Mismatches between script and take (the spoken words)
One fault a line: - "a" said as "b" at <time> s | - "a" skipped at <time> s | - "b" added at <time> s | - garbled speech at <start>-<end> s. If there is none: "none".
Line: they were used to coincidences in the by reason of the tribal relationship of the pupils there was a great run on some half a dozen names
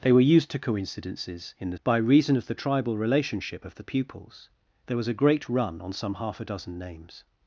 none